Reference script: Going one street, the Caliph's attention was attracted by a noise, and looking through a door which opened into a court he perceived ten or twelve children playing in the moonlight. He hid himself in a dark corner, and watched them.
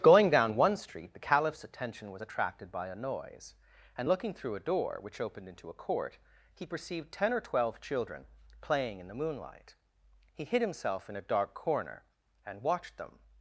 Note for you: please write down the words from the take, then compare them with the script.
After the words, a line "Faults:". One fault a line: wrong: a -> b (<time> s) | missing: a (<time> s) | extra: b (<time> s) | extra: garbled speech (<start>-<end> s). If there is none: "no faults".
Going down one street, the Caliph's attention was attracted by a noise, and looking through a door which opened into a court he perceived ten or twelve children playing in the moonlight. He hid himself in a dark corner, and watched them.
Faults:
extra: down (0.3 s)